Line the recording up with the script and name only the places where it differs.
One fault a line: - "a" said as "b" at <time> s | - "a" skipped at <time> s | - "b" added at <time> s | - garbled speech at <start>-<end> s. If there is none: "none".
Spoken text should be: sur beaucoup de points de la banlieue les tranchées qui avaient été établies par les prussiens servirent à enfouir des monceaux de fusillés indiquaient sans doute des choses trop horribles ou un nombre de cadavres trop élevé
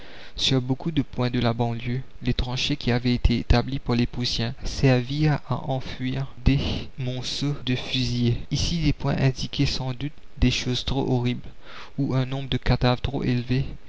- "ici des points" added at 8.5 s